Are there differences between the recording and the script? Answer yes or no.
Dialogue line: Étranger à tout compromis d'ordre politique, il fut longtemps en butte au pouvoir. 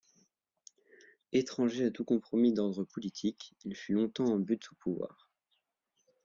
no